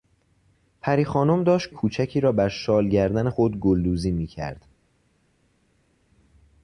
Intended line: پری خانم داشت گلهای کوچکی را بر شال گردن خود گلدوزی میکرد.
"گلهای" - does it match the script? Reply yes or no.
no